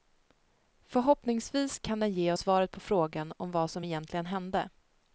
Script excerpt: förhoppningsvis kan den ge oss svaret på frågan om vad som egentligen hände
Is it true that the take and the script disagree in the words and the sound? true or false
true